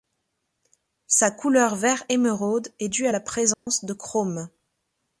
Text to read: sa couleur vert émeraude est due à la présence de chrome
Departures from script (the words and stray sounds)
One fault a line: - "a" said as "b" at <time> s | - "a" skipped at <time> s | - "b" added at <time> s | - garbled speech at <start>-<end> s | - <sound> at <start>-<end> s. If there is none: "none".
- dropout at 3.5-3.7 s